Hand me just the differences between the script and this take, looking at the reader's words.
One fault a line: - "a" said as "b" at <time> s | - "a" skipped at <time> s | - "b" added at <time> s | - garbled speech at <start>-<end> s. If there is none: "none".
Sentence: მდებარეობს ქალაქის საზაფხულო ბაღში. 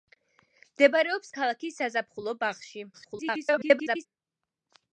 - garbled speech at 2.9-4.1 s